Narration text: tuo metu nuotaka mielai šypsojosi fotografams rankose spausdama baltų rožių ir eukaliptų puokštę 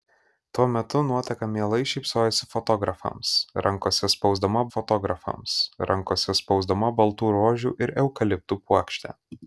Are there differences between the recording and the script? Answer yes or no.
yes